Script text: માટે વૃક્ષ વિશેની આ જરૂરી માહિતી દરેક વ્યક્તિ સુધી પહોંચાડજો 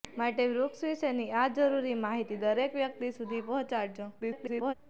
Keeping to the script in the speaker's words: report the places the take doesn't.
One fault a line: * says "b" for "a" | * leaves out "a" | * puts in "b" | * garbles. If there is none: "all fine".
* garbles